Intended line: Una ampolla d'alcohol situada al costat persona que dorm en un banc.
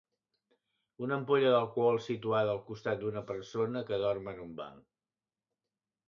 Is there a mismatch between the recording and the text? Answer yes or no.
yes